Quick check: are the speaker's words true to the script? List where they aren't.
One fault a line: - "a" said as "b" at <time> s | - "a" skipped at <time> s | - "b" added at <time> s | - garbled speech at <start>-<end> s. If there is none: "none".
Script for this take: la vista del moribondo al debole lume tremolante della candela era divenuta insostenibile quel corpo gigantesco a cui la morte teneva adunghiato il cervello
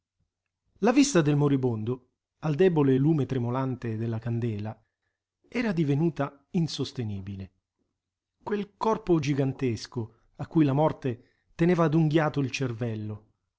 none